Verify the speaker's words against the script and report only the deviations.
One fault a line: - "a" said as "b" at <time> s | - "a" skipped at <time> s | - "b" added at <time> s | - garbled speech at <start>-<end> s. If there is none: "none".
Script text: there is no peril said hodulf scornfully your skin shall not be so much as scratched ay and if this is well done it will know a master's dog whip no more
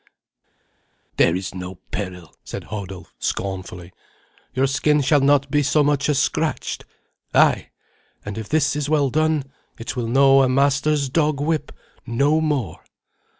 none